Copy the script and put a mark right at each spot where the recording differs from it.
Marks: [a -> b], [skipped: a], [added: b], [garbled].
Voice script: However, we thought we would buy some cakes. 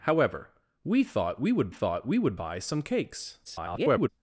However, we thought we would [added: thought we would] buy some cakes. [garbled]